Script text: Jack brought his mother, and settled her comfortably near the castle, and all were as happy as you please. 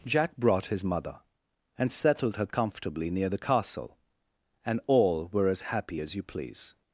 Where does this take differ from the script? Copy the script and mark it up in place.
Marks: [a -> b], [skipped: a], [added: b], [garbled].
Jack brought his mother, and settled her comfortably near the castle, and all were as happy as you please.